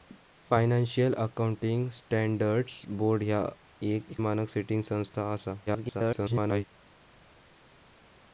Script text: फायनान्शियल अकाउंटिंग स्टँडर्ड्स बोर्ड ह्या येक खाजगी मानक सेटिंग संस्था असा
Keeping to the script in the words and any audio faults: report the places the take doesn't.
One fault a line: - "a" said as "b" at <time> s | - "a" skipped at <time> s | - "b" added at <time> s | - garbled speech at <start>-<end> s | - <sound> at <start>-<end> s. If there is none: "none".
- "खाजगी" skipped at 4.2 s
- garbled speech at 5.7-6.6 s